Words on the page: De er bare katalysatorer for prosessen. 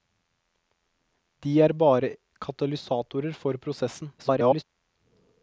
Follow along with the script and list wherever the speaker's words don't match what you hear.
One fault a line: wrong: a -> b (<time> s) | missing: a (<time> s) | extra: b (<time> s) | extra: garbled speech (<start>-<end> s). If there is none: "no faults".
extra: garbled speech (4.2-4.6 s)